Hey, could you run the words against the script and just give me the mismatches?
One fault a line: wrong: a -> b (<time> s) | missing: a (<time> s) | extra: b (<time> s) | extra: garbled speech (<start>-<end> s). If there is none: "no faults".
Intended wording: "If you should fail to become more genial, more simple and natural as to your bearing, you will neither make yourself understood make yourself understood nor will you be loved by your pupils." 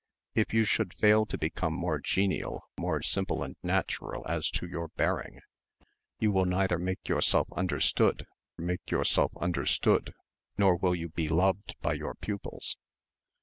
no faults